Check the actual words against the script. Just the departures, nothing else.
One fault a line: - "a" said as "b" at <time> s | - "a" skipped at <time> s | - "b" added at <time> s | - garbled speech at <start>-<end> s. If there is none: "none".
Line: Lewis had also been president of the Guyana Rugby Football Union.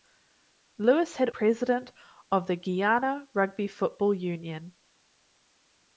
- "also been" skipped at 1.3 s